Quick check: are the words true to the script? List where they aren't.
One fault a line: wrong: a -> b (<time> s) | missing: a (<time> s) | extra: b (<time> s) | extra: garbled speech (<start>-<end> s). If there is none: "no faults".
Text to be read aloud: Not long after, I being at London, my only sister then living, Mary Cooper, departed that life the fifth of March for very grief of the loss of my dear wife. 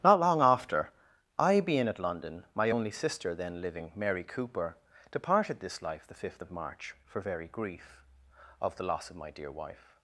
wrong: that -> this (5.6 s)